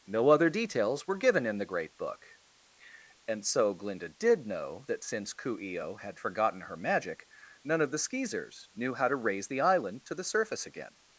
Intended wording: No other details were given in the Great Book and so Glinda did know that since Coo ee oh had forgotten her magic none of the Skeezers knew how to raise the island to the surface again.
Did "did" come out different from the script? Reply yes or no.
no